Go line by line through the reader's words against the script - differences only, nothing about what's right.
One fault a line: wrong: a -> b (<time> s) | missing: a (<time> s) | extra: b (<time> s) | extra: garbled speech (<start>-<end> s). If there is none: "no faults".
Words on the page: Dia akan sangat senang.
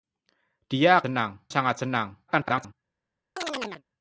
wrong: akan -> senang (1.0 s)
extra: garbled speech (2.3-2.7 s)